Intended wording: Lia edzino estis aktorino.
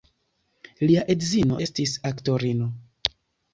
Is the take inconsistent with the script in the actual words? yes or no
no